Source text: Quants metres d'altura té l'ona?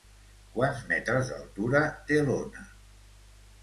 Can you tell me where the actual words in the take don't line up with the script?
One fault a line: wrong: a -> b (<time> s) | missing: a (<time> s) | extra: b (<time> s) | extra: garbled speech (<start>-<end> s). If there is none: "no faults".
no faults